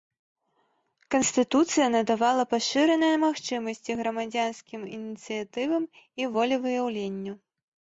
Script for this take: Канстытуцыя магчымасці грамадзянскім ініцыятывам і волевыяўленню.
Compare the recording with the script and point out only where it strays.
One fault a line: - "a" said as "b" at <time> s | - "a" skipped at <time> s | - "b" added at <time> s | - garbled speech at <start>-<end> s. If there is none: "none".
- "надавала пашыраныя" added at 2.0 s